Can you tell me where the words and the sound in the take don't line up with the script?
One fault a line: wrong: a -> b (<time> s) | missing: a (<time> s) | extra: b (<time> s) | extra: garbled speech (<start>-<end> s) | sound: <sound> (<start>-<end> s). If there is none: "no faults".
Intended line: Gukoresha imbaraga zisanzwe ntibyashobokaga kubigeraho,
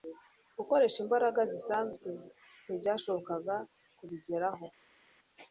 no faults